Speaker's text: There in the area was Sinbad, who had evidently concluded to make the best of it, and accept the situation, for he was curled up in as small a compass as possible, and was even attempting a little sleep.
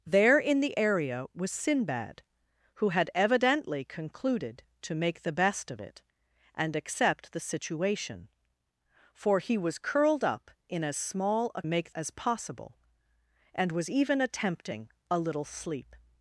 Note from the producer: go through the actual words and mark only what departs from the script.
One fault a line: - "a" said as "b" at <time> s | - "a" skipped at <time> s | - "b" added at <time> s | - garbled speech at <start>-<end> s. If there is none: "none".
- "compass" said as "make" at 11.7 s